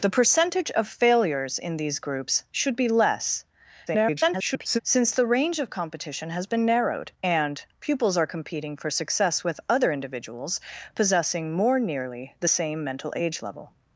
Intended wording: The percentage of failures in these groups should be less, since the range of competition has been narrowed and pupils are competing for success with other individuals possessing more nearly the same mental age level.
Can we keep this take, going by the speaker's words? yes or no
no